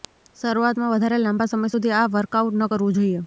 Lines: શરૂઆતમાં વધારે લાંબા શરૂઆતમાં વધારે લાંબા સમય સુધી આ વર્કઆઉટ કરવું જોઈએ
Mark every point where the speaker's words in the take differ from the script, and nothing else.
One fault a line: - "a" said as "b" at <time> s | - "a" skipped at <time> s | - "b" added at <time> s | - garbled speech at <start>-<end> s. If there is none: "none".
- "શરૂઆતમાં વધારે લાંબા" skipped at 1.5 s
- "ન" added at 2.6 s